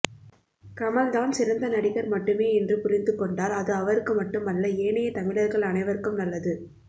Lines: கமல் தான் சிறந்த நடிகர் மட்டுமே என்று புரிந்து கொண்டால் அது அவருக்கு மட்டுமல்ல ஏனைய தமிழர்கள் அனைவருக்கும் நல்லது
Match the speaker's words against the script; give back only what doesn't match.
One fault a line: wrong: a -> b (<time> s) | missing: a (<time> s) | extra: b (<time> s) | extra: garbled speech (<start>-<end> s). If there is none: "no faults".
no faults